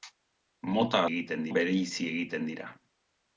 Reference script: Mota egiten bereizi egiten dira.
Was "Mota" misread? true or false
false